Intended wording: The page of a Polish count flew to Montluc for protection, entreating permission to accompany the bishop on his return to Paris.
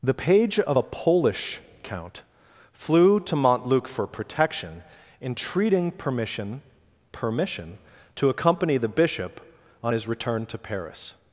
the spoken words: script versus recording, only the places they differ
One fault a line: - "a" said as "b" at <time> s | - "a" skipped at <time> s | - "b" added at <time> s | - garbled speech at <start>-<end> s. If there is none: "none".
- "permission" added at 7.1 s